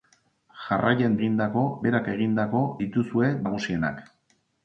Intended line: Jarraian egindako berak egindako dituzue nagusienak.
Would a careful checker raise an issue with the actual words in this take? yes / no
no